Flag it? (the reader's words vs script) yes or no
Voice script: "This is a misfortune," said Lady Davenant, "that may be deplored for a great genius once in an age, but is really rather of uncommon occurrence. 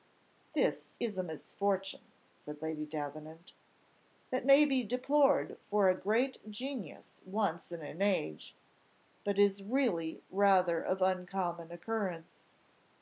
no